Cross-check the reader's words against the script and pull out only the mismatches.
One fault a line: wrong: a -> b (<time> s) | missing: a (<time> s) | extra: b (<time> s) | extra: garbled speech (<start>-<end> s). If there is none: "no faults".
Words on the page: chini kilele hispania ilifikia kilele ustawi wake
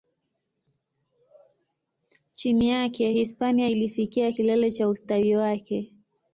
wrong: kilele -> yake (2.7 s)
extra: cha (4.7 s)